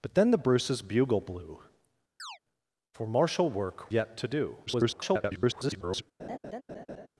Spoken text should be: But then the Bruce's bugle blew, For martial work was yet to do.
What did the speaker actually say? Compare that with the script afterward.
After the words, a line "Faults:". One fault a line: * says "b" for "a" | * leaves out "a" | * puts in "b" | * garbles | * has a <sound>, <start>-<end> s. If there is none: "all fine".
But then the Bruce's bugle blew, For martial work yet to do. [garbled]
Faults:
* has a chirp, 2.2-2.4 s
* leaves out "was"
* garbles
* has a laugh, 6.2-7.1 s